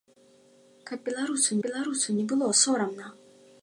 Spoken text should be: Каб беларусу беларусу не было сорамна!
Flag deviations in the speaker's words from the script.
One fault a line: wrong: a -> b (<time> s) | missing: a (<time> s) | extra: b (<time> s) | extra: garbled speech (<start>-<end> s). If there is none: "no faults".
no faults